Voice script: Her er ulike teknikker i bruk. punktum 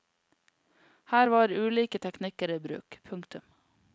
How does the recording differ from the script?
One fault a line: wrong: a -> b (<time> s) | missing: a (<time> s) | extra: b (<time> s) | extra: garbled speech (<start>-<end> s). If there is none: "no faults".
wrong: er -> var (1.3 s)